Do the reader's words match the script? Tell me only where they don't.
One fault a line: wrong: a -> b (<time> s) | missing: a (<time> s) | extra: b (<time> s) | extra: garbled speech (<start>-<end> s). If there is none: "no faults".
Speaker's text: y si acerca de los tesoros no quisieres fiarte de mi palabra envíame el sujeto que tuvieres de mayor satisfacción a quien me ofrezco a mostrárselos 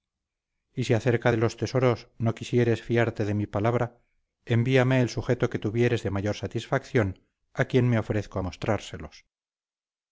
no faults